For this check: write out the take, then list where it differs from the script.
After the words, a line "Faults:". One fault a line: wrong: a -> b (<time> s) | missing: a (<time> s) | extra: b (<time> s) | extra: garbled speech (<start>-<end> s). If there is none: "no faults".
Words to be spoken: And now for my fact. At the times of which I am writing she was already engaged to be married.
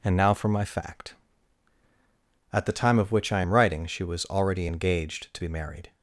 And now for my fact. At the time of which I am writing she was already engaged to be married.
Faults:
wrong: times -> time (2.7 s)